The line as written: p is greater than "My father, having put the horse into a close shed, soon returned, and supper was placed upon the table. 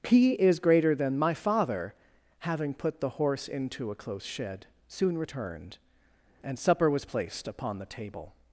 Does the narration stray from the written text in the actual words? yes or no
no